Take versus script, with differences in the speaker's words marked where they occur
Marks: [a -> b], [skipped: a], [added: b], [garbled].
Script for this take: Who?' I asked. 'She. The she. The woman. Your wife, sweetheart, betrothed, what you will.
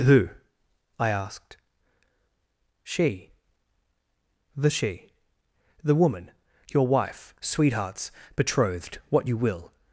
Who?' I asked. 'She. The she. The woman. Your wife, [sweetheart, -> sweethearts] betrothed, what you will.